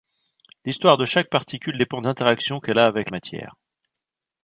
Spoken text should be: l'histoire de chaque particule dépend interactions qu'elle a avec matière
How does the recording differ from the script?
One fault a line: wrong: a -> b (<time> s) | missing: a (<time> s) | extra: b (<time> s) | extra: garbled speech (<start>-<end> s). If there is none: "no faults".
no faults